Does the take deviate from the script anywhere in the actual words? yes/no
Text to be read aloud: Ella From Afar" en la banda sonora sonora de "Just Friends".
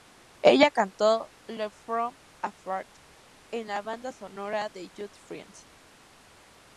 yes